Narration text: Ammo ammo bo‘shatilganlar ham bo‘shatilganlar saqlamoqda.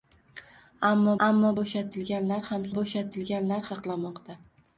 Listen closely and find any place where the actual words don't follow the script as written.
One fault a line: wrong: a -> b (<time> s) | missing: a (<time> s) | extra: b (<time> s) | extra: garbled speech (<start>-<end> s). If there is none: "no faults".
no faults